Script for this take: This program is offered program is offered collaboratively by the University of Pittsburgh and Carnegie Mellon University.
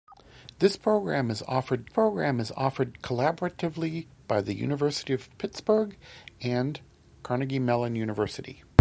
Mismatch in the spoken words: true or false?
false